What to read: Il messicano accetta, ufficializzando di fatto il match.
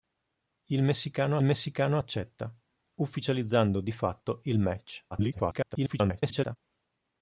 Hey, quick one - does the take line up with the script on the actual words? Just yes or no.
no